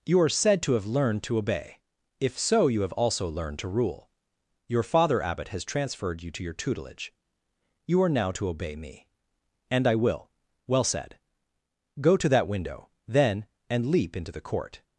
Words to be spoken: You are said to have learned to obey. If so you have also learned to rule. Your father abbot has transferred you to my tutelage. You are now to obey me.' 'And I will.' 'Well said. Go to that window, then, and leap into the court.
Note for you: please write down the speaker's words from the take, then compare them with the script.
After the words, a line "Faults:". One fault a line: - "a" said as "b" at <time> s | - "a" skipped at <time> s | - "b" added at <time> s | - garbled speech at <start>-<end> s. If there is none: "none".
You are said to have learned to obey. If so you have also learned to rule. Your father abbot has transferred you to your tutelage. You are now to obey me.' 'And I will.' 'Well said. Go to that window, then, and leap into the court.
Faults:
- "my" said as "your" at 6.4 s